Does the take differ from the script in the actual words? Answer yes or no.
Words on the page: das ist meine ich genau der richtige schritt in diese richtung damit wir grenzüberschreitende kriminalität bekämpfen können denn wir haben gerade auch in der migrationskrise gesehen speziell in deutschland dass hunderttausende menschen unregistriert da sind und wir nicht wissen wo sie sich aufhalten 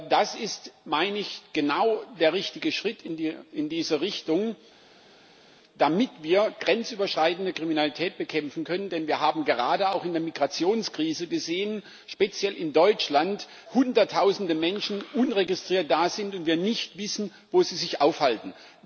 yes